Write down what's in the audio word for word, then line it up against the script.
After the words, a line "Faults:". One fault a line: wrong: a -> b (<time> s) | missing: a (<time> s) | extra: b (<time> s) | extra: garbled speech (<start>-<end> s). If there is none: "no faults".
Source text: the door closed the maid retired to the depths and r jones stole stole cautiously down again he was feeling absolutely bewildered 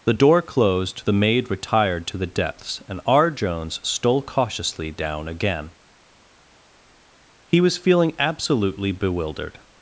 the door closed the maid retired to the depths and r jones stole cautiously down again he was feeling absolutely bewildered
Faults:
missing: stole (4.2 s)